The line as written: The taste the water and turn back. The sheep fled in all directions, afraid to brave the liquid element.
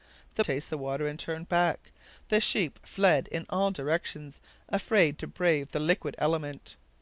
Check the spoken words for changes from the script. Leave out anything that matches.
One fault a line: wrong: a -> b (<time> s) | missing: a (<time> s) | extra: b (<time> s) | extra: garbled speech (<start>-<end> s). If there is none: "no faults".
no faults